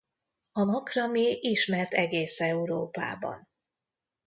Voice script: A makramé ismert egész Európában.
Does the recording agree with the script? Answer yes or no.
yes